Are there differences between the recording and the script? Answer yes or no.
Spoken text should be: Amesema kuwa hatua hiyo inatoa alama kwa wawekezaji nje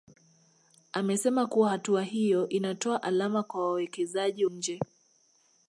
no